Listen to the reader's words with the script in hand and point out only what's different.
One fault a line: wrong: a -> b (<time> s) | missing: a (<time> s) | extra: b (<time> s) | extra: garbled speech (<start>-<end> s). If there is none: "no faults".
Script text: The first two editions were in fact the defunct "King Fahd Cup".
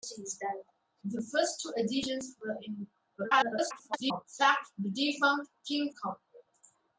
extra: garbled speech (3.2-4.3 s)
missing: Fahd (5.9 s)